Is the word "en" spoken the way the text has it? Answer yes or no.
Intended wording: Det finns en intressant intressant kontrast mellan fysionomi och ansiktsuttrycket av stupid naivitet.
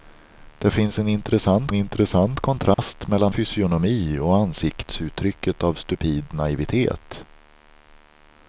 yes